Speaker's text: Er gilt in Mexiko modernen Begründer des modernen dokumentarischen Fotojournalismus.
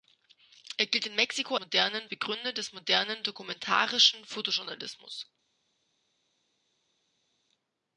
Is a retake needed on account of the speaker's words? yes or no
no